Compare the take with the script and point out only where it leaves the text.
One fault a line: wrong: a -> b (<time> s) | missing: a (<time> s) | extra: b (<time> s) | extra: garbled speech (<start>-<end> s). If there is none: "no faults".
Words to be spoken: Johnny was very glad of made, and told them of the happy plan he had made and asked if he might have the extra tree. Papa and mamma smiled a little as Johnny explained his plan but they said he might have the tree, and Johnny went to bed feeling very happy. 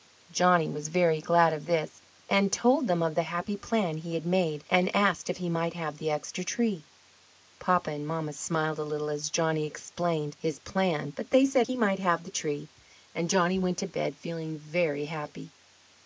wrong: made -> this (1.7 s)